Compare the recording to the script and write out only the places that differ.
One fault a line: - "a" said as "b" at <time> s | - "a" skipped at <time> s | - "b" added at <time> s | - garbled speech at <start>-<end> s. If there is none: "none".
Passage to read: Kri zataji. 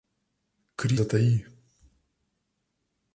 none